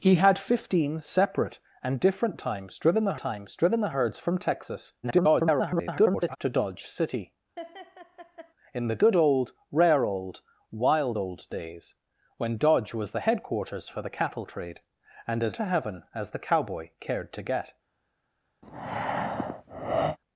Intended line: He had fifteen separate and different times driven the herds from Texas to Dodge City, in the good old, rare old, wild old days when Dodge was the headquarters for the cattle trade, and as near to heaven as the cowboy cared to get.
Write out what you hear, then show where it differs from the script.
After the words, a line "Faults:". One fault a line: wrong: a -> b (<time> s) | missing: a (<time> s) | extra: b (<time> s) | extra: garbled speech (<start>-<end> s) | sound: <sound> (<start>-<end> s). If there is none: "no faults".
He had fifteen separate and different times driven the times driven the herds from Texas [garbled] to Dodge City, in the good old, rare old, wild old days when Dodge was the headquarters for the cattle trade, and as to heaven as the cowboy cared to get.
Faults:
extra: times driven the (3.2 s)
extra: garbled speech (5.0-6.4 s)
sound: laugh (7.6-8.5 s)
missing: near (15.6 s)
sound: breath (18.6-20.2 s)